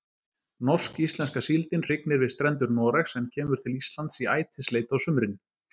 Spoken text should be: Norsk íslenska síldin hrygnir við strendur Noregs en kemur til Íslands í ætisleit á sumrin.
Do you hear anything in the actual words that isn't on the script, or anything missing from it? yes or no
no